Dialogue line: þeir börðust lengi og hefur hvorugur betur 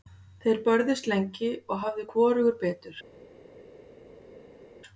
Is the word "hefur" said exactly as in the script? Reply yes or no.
no